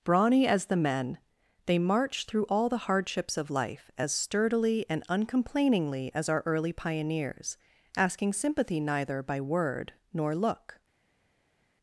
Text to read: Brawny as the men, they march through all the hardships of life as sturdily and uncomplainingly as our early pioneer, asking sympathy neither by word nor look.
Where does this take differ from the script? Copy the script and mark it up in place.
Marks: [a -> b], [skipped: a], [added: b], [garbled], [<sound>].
Brawny as the men, they march through all the hardships of life as sturdily and uncomplainingly as our early [pioneer, -> pioneers] asking sympathy neither by word nor look.